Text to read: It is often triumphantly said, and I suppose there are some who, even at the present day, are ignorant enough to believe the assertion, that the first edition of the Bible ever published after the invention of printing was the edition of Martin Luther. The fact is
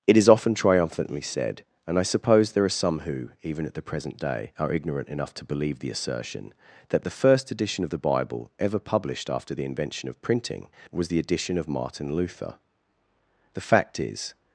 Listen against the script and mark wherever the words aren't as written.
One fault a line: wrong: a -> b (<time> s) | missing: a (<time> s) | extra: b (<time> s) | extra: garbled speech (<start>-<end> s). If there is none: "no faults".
no faults